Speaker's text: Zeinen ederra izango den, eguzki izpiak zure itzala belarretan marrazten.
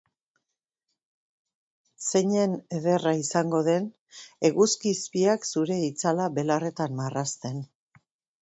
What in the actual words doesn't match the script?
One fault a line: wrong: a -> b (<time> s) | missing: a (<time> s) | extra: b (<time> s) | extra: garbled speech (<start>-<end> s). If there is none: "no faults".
no faults